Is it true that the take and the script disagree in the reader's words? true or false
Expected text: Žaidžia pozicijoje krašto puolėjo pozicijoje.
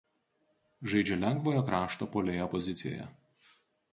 true